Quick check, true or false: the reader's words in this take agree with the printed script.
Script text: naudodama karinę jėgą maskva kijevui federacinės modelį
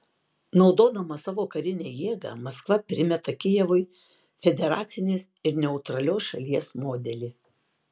false